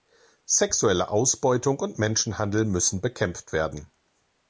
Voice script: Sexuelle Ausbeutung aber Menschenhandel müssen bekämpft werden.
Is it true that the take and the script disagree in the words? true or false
true